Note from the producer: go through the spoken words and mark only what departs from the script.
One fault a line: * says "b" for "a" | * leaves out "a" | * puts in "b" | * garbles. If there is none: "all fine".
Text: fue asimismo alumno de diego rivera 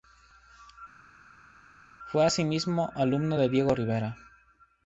all fine